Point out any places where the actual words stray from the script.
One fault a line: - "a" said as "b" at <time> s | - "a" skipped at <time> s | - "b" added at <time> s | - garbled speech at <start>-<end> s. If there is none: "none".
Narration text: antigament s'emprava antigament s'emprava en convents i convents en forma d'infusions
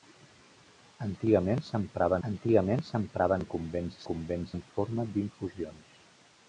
none